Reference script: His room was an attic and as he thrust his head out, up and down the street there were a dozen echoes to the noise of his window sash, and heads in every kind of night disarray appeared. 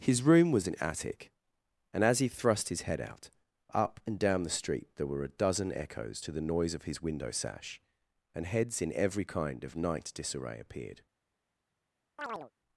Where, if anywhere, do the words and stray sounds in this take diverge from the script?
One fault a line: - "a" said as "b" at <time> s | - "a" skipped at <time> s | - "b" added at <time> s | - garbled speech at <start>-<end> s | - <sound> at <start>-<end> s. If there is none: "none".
- chirp at 12.2-12.5 s